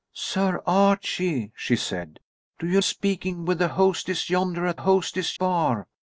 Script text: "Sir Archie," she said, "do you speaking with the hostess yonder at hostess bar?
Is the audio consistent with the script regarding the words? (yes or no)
yes